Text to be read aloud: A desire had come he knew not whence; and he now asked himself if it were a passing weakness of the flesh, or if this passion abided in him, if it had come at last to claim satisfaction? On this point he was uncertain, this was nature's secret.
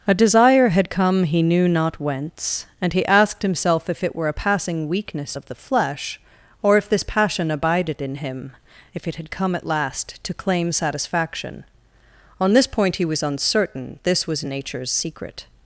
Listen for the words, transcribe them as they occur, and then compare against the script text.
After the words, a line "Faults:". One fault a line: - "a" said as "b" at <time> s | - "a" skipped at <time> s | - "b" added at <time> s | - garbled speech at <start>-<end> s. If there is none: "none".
A desire had come he knew not whence; and he asked himself if it were a passing weakness of the flesh, or if this passion abided in him, if it had come at last to claim satisfaction? On this point he was uncertain, this was nature's secret.
Faults:
- "now" skipped at 3.0 s